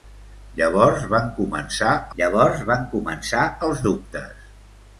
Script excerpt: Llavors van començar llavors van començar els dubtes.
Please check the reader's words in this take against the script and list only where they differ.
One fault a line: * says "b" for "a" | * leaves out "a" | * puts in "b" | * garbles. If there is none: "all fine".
all fine